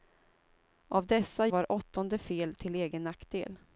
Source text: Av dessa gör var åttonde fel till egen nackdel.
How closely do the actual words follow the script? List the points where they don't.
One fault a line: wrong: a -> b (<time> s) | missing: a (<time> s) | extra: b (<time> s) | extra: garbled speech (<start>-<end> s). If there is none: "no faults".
missing: gör (1.5 s)